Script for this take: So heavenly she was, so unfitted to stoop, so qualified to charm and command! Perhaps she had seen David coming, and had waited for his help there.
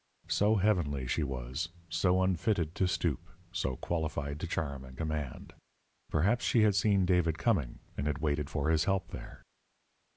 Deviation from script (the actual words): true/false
false